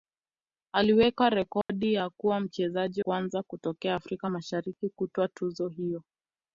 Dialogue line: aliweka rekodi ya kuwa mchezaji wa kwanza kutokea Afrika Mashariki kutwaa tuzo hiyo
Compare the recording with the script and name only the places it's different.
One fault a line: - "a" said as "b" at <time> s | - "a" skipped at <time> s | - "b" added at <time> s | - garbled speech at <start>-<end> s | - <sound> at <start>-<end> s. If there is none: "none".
- dropout at 1.6-1.7 s
- "wa" skipped at 3.0 s